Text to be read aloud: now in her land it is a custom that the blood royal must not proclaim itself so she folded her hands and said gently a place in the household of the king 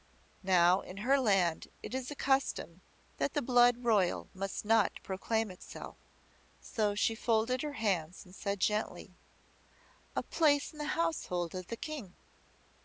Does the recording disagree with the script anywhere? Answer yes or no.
no